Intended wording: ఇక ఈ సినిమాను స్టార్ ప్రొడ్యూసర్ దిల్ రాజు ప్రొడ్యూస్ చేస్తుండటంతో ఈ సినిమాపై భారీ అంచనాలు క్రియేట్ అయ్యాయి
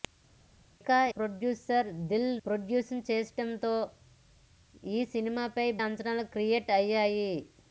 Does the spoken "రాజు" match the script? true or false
false